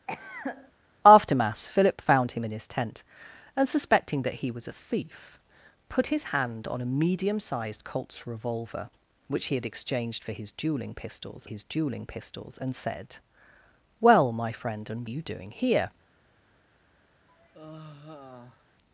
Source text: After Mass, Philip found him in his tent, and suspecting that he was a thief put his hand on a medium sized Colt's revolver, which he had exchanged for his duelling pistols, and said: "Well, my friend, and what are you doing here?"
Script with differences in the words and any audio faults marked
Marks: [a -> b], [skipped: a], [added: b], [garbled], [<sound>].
[cough] After Mass, Philip found him in his tent, and suspecting that he was a thief put his hand on a medium sized Colt's revolver, which he had exchanged for his duelling pistols, [added: his duelling pistols] and said: "Well, my friend, and [skipped: what] are you doing here?" [sigh]